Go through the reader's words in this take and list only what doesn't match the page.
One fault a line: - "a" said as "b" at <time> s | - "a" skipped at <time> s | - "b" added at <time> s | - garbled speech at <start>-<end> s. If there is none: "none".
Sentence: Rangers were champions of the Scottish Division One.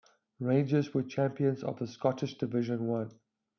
none